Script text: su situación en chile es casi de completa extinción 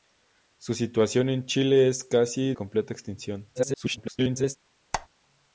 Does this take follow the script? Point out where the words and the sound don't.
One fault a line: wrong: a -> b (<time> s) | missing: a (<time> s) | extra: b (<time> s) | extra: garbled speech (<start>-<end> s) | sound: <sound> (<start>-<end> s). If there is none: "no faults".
missing: de (2.5 s)
extra: garbled speech (3.5-4.6 s)
sound: squeak (4.9-5.1 s)